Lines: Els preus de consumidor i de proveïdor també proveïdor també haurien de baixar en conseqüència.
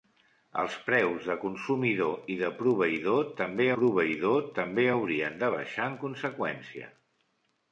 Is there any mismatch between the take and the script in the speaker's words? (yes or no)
no